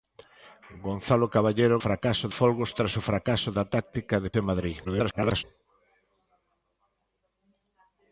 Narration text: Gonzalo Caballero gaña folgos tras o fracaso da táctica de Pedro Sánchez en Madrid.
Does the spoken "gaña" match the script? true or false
false